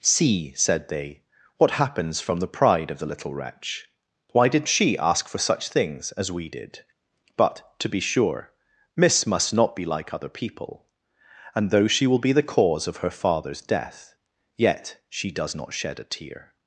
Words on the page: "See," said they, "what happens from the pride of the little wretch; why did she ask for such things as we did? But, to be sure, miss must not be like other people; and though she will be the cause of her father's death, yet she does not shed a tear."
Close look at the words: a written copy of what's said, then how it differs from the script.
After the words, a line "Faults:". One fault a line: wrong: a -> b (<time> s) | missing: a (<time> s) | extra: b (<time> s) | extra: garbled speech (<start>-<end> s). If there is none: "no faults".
"See," said they, "what happens from the pride of the little wretch; why did she ask for such things as we did? But, to be sure, miss must not be like other people; and though she will be the cause of her father's death, yet she does not shed a tear."
Faults:
no faults